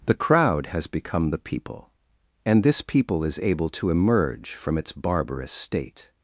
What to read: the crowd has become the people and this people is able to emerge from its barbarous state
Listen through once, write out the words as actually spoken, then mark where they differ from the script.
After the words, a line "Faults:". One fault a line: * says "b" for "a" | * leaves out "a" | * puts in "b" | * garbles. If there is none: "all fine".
the crowd has become the people and this people is able to emerge from its barbarous state
Faults:
all fine